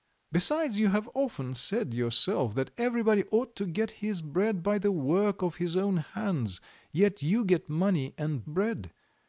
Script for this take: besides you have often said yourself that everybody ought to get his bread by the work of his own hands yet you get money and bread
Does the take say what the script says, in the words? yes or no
yes